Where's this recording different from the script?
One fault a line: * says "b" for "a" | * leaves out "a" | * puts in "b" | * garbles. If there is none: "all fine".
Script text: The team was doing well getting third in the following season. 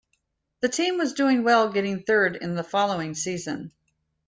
all fine